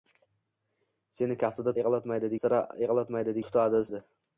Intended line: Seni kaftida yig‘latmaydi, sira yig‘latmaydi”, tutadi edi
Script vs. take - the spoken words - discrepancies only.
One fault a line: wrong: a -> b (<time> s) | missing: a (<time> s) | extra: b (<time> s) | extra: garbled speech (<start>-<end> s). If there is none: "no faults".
no faults